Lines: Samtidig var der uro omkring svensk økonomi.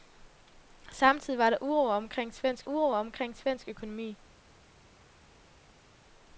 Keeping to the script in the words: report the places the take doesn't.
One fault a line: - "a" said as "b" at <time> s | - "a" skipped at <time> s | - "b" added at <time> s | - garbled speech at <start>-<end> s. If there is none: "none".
- "uro omkring svensk" added at 2.7 s